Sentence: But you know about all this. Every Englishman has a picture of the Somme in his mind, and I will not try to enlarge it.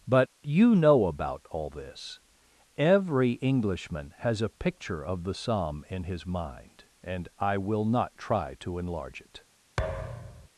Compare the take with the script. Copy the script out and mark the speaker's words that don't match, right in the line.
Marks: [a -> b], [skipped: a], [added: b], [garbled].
But you know about all this. Every Englishman has a picture of the Somme in his mind, and I will not try to enlarge it.